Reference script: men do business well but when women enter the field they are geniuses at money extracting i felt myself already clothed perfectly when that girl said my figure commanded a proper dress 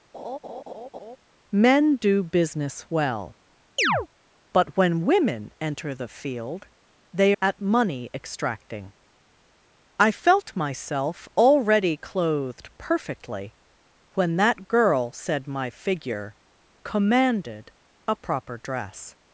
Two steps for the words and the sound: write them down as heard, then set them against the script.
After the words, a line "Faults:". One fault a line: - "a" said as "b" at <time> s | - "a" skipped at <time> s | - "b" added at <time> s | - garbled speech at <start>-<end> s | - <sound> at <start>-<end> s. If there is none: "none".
men do business well but when women enter the field they at money extracting i felt myself already clothed perfectly when that girl said my figure commanded a proper dress
Faults:
- laugh at 0.1-1.2 s
- chirp at 3.8-4.1 s
- "are geniuses" skipped at 7.3 s